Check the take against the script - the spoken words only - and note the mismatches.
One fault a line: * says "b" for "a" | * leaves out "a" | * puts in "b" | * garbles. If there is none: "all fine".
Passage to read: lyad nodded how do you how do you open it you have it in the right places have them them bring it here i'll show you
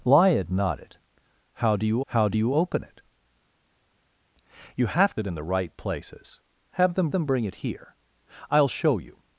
all fine